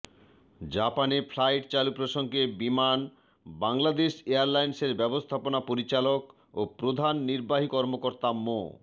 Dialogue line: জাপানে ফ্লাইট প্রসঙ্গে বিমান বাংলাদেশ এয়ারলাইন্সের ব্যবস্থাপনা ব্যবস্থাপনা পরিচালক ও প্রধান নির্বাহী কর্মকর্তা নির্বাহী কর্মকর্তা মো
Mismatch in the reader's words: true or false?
true